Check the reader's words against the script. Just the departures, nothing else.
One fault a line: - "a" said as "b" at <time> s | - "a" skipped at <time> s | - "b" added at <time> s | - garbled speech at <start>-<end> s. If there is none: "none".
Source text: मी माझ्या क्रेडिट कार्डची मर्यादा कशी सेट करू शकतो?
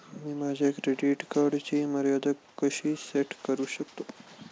none